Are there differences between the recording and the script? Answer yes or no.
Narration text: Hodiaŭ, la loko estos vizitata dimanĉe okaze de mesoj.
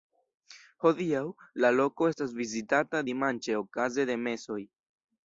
yes